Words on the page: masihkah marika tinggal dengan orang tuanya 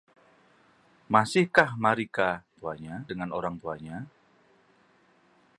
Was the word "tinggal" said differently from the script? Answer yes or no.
yes